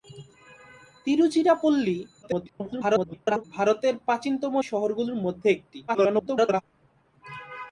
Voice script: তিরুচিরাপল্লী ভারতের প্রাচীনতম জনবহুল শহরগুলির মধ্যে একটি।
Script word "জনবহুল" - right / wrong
wrong